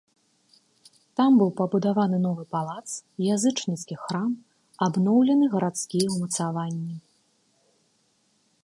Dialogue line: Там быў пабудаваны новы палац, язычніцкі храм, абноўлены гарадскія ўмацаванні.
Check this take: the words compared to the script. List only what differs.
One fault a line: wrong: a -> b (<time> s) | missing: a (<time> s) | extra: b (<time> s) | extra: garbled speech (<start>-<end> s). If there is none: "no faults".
no faults